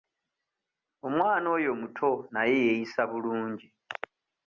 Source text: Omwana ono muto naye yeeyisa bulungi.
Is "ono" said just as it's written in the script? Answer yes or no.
no